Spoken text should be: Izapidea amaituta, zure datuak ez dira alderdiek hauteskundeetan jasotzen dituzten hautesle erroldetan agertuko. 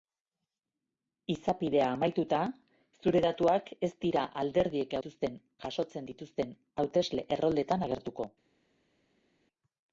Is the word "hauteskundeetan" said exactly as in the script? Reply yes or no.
no